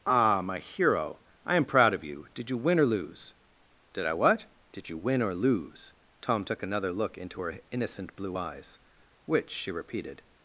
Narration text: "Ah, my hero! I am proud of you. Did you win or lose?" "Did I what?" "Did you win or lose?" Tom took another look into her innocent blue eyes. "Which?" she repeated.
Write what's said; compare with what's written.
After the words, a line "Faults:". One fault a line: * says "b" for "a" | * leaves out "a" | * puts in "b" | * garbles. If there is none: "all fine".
"Ah, my hero! I am proud of you. Did you win or lose?" "Did I what?" "Did you win or lose?" Tom took another look into her innocent blue eyes. "Which?" she repeated.
Faults:
all fine